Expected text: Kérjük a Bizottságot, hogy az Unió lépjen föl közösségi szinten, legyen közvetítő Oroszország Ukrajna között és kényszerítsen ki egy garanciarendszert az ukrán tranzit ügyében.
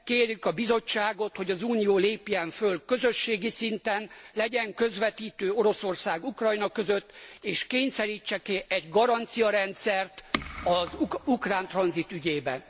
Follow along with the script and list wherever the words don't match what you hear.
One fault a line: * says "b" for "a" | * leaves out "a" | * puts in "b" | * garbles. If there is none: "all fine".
all fine